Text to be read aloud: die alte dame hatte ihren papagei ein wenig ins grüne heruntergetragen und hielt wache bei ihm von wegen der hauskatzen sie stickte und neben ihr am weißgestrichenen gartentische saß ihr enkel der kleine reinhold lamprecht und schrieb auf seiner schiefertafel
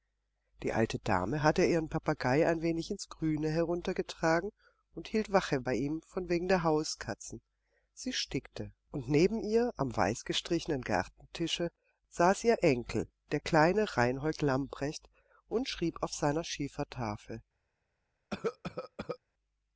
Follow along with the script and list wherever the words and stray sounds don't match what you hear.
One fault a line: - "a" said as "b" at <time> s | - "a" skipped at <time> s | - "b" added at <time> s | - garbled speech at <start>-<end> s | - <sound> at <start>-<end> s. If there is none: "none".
- cough at 18.3-19.2 s